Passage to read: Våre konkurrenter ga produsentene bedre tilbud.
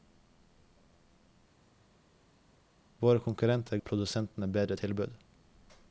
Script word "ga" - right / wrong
wrong